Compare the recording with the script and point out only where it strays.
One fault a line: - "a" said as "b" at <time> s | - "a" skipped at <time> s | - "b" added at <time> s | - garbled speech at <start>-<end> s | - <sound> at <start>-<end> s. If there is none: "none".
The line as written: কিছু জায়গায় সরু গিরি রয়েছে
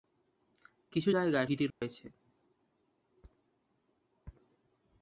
- "সরু" skipped at 1.5 s
- dropout at 1.7-1.8 s